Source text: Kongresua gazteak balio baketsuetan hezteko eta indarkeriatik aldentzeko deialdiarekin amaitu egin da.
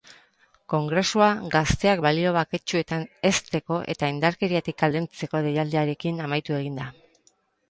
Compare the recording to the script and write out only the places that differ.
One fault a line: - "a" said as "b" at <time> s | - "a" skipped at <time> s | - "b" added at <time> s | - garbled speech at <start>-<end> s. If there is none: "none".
none